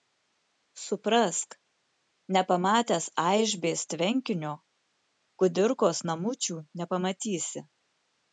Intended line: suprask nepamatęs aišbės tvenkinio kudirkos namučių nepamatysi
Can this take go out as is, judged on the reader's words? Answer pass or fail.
pass